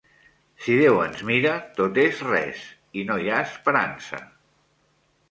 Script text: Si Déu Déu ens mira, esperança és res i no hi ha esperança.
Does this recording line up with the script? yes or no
no